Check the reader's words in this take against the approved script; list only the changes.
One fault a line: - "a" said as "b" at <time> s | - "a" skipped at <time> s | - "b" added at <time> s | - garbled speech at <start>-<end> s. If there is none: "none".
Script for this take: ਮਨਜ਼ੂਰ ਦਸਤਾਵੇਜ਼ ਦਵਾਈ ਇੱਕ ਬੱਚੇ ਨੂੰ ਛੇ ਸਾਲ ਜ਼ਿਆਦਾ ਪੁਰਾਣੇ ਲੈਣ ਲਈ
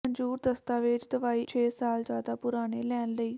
- "ਇੱਕ ਬੱਚੇ ਨੂੰ" skipped at 1.4 s